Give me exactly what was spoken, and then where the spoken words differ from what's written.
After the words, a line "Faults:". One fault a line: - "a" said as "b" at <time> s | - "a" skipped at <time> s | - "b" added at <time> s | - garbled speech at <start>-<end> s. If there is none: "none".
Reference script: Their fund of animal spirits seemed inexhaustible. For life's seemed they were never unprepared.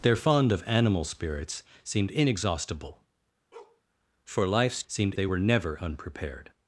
Their fund of animal spirits seemed inexhaustible. For life's seemed they were never unprepared.
Faults:
none